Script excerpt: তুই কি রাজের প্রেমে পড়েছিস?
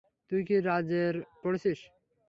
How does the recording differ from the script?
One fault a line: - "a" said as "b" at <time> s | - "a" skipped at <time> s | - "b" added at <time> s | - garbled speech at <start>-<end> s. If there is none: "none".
- "প্রেমে" skipped at 1.1 s